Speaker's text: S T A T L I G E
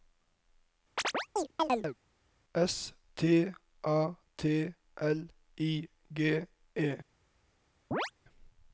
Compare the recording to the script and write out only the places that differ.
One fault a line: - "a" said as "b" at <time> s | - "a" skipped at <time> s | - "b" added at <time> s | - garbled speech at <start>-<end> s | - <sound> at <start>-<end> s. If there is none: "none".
- chirp at 1.0-2.0 s
- chirp at 7.9-8.1 s